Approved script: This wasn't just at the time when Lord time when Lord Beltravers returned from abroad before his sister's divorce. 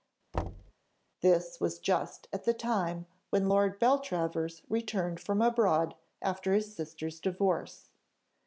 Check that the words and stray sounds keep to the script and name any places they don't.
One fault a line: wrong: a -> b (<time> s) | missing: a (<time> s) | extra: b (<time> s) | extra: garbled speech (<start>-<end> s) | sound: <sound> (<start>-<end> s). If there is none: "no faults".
sound: thud (0.3-0.7 s)
wrong: wasn't -> was (1.6 s)
missing: time when Lord (3.8 s)
wrong: before -> after (6.2 s)